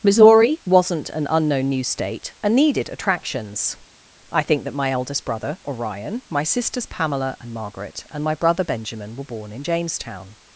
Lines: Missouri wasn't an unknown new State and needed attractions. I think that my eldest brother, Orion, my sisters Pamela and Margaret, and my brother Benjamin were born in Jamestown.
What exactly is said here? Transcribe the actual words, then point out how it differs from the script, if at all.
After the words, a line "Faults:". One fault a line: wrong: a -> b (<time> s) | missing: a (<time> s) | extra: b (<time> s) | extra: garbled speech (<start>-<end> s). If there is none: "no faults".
Missouri wasn't an unknown new State and needed attractions. I think that my eldest brother, Orion, my sisters Pamela and Margaret, and my brother Benjamin were born in Jamestown.
Faults:
no faults